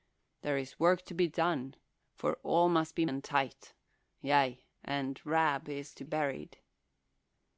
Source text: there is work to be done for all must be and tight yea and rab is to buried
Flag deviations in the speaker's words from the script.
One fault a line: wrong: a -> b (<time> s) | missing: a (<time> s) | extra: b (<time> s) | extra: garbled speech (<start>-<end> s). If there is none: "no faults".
no faults